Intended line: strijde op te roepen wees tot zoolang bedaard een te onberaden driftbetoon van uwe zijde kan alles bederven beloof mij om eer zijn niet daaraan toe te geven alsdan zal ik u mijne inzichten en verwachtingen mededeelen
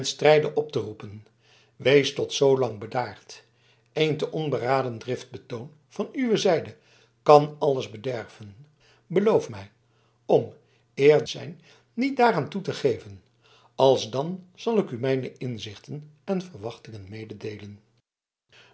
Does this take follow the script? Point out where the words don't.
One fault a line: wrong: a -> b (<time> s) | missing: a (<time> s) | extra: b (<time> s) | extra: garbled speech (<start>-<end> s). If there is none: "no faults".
no faults